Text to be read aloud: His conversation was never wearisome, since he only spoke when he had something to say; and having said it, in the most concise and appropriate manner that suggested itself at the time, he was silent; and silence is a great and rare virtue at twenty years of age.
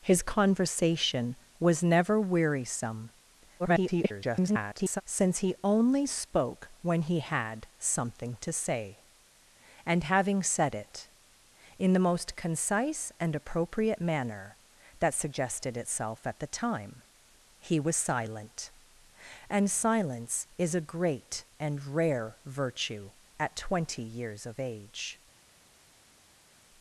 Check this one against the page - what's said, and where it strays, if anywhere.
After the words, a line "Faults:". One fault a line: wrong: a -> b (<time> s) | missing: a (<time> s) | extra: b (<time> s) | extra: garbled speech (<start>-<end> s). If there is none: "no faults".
His conversation was never wearisome, [garbled] since he only spoke when he had something to say; and having said it, in the most concise and appropriate manner that suggested itself at the time, he was silent; and silence is a great and rare virtue at twenty years of age.
Faults:
extra: garbled speech (3.6-5.0 s)